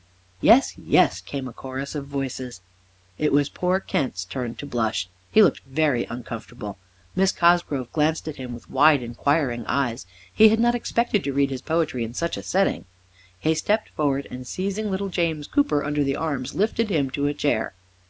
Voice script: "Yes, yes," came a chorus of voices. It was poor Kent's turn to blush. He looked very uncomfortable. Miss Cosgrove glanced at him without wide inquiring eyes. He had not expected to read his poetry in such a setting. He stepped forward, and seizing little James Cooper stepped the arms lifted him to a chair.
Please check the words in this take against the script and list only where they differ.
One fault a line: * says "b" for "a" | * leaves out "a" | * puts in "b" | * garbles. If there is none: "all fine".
* says "with" for "without"
* says "under" for "stepped"